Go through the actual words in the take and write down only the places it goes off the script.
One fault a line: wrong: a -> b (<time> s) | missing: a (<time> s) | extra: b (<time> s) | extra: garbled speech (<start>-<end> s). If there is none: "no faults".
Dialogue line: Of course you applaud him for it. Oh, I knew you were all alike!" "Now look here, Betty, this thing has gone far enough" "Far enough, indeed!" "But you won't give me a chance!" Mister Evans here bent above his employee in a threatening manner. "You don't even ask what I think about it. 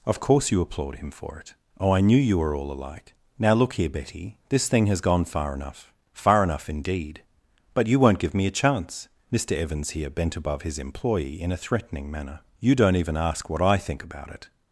no faults